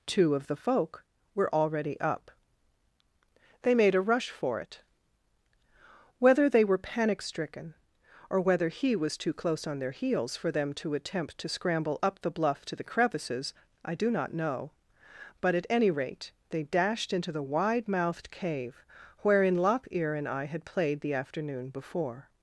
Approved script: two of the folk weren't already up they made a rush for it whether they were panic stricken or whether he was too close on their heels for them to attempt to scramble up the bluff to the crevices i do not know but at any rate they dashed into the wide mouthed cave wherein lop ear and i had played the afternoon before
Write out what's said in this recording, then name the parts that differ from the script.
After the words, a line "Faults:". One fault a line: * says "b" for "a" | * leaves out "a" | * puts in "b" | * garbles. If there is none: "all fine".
two of the folk were already up they made a rush for it whether they were panic stricken or whether he was too close on their heels for them to attempt to scramble up the bluff to the crevices i do not know but at any rate they dashed into the wide mouthed cave wherein lop ear and i had played the afternoon before
Faults:
* says "were" for "weren't"